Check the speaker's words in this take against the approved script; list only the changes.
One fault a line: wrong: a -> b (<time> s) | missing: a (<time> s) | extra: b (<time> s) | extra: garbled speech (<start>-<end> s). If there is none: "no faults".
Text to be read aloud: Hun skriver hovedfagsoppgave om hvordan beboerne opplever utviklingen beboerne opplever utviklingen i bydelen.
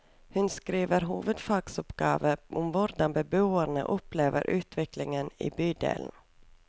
missing: beboerne opplever utviklingen (5.3 s)